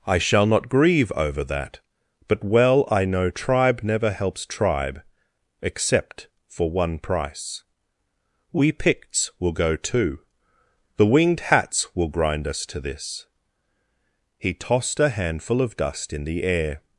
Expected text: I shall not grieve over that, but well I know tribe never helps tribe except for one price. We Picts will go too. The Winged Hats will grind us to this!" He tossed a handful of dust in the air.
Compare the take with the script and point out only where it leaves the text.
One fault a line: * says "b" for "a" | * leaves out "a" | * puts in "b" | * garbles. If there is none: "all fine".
all fine